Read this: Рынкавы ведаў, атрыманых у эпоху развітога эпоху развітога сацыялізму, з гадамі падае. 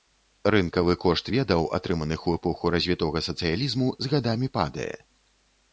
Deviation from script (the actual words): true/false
true